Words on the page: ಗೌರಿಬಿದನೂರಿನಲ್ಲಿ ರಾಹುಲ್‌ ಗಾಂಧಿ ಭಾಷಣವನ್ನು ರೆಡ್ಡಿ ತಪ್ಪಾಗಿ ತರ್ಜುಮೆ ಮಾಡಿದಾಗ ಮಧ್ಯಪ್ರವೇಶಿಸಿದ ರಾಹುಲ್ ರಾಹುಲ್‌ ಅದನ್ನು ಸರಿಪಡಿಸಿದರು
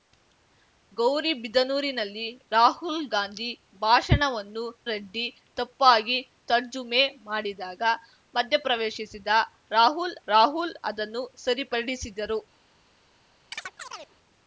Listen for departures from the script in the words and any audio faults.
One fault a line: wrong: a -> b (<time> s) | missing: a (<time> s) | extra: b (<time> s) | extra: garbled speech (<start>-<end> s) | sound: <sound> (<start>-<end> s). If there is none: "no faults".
sound: chirp (13.5-14.2 s)